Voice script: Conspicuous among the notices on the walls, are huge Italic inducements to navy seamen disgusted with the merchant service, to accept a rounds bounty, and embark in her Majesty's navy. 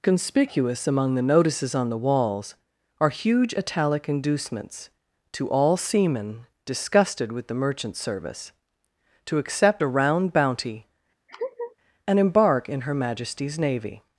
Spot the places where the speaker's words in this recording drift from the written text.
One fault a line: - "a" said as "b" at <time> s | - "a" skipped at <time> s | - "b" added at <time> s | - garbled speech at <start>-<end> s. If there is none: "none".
- "navy" said as "all" at 5.5 s
- "rounds" said as "round" at 9.9 s